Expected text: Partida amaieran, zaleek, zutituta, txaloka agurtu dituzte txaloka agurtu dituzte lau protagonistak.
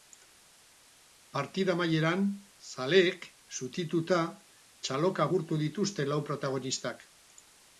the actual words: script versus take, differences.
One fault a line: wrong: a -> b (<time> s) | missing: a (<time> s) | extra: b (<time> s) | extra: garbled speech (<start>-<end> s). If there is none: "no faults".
missing: txaloka agurtu dituzte (6.1 s)